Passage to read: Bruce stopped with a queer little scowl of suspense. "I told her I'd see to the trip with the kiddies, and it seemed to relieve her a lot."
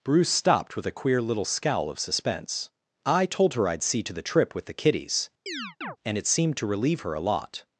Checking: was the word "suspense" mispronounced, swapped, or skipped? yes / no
no